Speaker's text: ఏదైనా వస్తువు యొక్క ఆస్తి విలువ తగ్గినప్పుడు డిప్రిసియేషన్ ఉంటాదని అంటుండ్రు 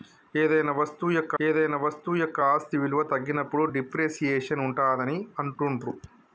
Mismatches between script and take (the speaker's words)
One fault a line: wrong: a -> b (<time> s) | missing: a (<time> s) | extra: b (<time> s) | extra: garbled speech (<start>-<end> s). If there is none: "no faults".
extra: ఏదైనా వస్తువు యొక్క (1.4 s)